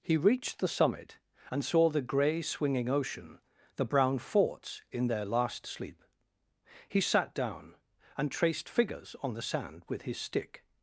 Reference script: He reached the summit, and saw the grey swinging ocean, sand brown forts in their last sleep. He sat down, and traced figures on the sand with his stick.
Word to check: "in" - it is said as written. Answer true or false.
true